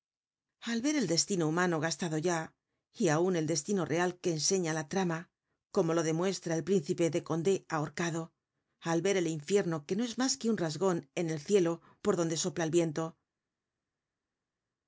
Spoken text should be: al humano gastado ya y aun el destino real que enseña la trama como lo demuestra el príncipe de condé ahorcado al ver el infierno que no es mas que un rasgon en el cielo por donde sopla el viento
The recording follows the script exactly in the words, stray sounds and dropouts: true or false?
false